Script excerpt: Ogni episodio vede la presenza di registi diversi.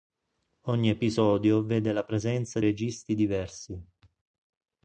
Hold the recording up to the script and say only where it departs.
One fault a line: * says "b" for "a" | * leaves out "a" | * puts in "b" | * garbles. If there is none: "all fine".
* leaves out "di"